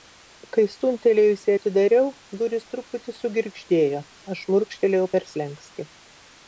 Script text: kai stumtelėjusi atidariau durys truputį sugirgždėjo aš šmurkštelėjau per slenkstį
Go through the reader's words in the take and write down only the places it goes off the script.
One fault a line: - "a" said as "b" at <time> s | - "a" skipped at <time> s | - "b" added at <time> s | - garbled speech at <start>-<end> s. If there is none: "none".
none